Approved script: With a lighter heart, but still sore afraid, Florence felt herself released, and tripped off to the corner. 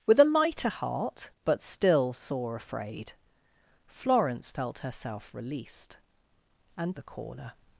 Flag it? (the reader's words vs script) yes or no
yes